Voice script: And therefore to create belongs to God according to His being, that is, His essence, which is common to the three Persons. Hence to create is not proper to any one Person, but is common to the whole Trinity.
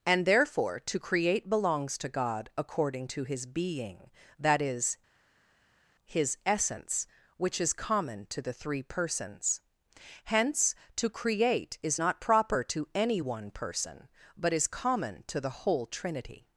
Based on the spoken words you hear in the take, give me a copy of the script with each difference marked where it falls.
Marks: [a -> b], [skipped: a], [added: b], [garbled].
And therefore to create belongs to God according to His being, that is, His essence, which is common to the three Persons. Hence to create is not proper to any one Person, but is common to the whole Trinity.